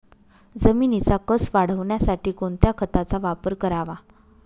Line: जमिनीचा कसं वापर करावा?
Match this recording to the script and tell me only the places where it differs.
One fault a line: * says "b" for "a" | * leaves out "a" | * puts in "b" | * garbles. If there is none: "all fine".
* puts in "वाढवण्यासाठी कोणत्या खताचा"